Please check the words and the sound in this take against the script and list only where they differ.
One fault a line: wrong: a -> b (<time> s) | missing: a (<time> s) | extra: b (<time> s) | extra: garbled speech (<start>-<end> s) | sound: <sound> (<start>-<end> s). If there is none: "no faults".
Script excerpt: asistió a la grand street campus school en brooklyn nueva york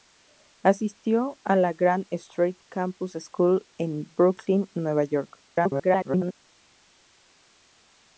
extra: garbled speech (5.5-6.3 s)